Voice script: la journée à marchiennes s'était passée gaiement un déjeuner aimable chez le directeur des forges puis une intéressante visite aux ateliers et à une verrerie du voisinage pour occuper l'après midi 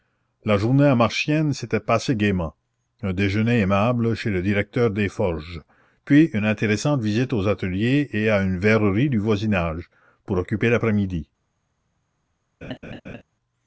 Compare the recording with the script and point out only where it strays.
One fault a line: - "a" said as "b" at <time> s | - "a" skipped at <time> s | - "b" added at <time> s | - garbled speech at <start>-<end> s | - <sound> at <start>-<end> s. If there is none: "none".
- laugh at 12.6-13.2 s